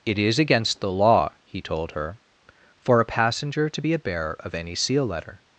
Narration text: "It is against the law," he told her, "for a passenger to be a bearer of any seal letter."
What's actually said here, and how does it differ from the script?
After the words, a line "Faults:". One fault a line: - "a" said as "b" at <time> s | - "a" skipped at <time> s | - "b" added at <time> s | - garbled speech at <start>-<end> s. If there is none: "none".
"It is against the law," he told her, "for a passenger to be a bearer of any seal letter."
Faults:
none